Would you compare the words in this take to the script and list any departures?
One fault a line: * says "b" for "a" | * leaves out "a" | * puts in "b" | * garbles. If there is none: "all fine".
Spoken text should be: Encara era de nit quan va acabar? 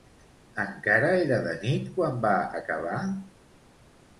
all fine